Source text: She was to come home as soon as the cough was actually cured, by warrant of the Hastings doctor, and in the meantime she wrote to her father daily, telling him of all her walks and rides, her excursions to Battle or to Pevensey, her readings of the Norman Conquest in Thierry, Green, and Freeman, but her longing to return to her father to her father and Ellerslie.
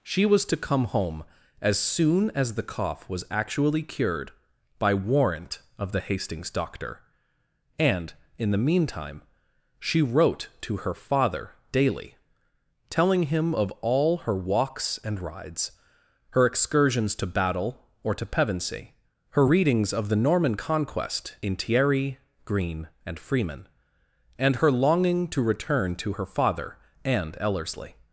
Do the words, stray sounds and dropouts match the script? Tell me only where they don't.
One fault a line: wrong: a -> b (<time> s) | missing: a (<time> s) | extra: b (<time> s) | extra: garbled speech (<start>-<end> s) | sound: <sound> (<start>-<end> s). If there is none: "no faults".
wrong: but -> and (24.4 s)
missing: to her father (26.8 s)